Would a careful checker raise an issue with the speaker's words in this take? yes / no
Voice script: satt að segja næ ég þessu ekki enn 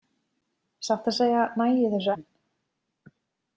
yes